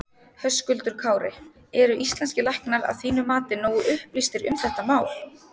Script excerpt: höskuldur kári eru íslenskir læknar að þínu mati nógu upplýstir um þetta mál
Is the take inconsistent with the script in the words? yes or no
no